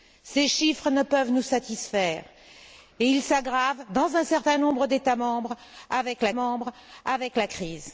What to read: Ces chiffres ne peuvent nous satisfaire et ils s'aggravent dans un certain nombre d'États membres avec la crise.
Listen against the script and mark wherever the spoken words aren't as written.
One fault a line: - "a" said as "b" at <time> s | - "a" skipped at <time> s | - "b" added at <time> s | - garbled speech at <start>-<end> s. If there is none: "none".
- "membres avec la" added at 6.3 s